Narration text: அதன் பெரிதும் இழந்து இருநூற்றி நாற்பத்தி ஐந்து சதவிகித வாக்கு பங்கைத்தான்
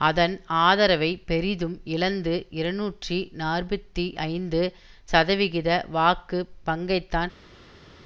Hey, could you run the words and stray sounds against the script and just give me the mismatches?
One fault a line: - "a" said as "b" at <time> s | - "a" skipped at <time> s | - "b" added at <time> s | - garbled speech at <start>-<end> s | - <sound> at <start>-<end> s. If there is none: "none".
- "ஆதரவை" added at 0.6 s